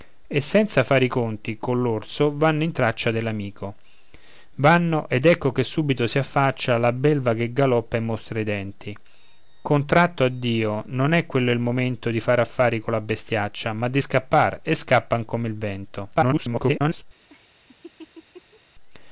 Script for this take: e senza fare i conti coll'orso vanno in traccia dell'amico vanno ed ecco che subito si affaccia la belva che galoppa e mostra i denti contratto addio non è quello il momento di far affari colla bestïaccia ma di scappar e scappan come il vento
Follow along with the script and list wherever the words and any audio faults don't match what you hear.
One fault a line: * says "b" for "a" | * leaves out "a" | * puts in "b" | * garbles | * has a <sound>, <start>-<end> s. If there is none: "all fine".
* garbles
* has a laugh, 17.3-18.6 s